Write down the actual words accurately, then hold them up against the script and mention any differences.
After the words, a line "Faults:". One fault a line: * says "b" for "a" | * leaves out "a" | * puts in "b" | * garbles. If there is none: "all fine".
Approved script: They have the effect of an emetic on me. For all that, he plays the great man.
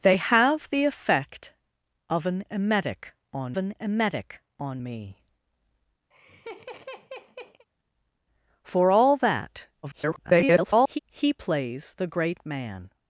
They have the effect of an emetic on an emetic on me. For all that, [garbled] he plays the great man.
Faults:
* puts in "an emetic on"
* garbles